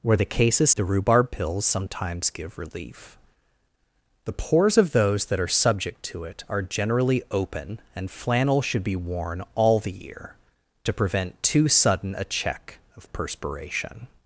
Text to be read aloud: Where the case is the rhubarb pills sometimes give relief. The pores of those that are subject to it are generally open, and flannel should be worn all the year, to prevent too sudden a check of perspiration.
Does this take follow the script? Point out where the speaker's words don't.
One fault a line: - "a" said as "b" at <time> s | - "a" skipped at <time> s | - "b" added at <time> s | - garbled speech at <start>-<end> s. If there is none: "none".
none